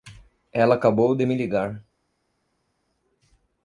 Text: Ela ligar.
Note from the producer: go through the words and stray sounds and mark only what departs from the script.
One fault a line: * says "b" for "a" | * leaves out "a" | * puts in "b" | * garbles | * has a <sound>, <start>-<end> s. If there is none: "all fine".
* puts in "acabou de me"